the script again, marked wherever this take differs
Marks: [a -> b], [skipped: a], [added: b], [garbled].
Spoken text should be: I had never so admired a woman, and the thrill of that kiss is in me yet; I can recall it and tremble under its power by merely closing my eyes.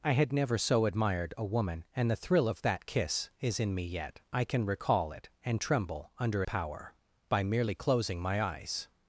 I had never so admired a woman, and the thrill of that kiss is in me yet; I can recall it and tremble under [skipped: its] power by merely closing my eyes.